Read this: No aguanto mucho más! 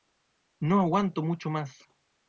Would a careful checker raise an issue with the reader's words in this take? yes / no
no